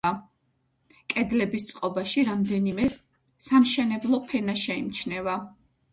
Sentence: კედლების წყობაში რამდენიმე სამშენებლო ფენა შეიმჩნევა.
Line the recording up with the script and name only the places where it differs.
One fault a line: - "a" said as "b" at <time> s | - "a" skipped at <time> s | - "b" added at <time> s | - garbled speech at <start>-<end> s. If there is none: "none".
none